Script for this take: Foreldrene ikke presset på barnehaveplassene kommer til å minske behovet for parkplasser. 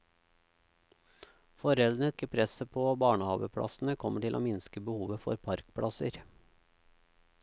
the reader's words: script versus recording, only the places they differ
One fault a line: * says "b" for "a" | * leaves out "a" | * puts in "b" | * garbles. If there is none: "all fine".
all fine